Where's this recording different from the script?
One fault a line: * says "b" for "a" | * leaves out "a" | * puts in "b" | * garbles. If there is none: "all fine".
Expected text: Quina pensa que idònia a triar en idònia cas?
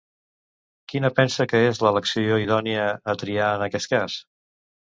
* puts in "és l'elecció"
* says "aquest" for "idònia"